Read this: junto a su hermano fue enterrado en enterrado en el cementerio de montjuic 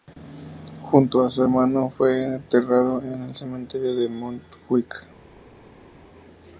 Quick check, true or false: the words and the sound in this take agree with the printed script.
false